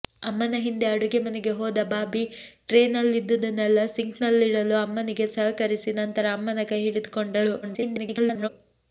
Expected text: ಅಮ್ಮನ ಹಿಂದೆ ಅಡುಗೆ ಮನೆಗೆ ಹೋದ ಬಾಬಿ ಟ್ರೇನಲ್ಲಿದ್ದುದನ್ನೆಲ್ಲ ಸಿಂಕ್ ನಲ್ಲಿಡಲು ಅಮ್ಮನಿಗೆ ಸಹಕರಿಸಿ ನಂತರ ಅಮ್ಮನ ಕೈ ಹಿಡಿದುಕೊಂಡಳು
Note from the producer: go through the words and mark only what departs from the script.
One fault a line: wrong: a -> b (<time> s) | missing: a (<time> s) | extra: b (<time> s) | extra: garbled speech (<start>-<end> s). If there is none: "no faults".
extra: garbled speech (7.6-8.5 s)